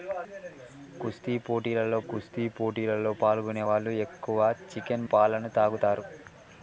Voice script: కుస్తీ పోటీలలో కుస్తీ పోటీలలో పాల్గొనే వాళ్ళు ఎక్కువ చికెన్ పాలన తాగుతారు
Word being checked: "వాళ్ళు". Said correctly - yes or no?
yes